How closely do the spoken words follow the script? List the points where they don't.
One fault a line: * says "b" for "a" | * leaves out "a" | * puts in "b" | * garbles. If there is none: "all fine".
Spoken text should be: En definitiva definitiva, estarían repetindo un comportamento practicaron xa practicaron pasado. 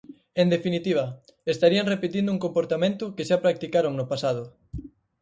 * leaves out "definitiva"
* says "que" for "practicaron"
* puts in "no"